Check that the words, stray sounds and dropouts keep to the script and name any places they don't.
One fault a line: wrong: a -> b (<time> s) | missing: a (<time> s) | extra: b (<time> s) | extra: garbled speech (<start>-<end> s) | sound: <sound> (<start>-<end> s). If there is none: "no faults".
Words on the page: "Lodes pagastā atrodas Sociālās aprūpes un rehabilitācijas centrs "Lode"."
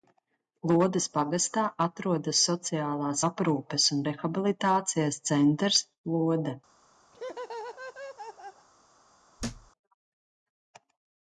sound: laugh (7.1-8.7 s)
sound: thud (9.4-9.7 s)